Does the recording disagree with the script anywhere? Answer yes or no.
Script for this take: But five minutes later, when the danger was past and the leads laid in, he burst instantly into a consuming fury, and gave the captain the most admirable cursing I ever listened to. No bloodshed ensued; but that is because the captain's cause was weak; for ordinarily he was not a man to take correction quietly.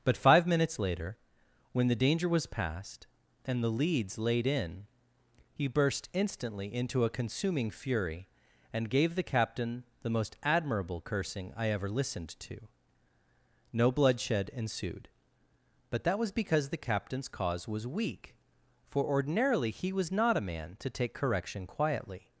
yes